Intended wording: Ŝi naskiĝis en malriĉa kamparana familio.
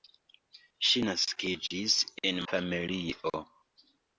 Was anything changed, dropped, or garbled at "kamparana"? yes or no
yes